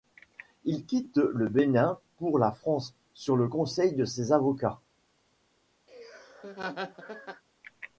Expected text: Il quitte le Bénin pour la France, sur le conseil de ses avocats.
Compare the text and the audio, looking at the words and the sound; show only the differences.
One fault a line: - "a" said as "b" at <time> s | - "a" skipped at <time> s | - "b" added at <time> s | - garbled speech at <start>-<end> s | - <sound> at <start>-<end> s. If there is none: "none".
- laugh at 5.9-7.4 s